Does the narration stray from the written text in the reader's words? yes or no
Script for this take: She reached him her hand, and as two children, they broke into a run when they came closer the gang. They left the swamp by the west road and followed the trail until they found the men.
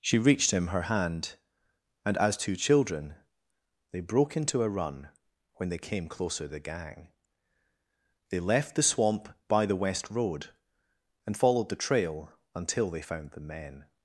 no